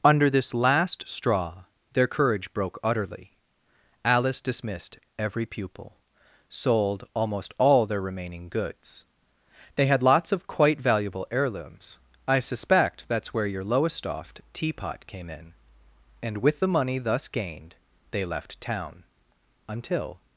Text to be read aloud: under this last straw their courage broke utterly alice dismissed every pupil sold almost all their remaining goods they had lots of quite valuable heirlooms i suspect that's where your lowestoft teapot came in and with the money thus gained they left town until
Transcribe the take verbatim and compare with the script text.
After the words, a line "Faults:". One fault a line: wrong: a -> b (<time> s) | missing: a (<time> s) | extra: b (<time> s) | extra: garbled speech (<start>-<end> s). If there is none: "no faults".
under this last straw their courage broke utterly alice dismissed every pupil sold almost all their remaining goods they had lots of quite valuable heirlooms i suspect that's where your lowestoft teapot came in and with the money thus gained they left town until
Faults:
no faults